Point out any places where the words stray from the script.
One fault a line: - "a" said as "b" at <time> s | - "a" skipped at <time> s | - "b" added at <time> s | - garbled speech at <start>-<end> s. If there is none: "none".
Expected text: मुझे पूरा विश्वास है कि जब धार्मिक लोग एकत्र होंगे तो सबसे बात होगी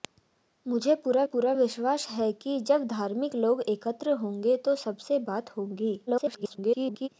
- "पूरा" added at 1.2 s
- garbled speech at 6.1-7.1 s